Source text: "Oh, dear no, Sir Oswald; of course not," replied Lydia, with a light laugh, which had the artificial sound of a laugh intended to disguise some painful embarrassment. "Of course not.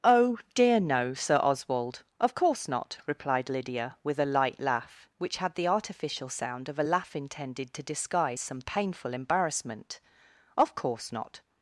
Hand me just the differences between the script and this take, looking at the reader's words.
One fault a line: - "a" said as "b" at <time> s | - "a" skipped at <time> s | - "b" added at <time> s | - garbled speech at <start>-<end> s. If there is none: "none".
none